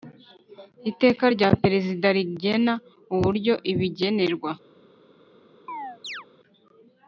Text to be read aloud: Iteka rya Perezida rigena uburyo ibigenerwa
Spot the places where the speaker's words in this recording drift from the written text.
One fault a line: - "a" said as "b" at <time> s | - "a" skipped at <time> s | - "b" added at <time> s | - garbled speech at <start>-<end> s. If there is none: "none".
none